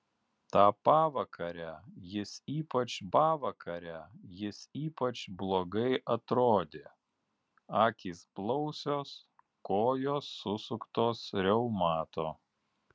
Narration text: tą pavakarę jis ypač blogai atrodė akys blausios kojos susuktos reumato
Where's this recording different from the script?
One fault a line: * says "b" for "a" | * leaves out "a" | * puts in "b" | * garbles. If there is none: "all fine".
* puts in "pavakarę jis ypač"